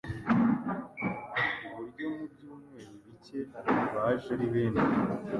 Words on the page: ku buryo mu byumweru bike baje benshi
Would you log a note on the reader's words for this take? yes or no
yes